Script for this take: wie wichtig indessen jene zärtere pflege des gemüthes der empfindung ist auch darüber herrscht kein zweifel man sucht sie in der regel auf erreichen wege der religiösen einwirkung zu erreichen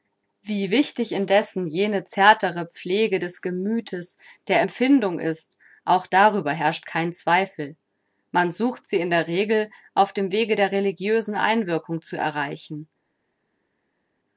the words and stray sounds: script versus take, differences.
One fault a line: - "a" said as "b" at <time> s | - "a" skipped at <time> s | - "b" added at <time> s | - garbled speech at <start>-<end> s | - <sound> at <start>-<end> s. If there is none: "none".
- "erreichen" said as "dem" at 10.1 s